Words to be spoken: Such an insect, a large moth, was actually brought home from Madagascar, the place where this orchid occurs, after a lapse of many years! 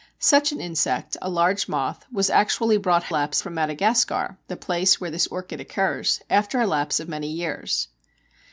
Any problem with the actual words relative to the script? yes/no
yes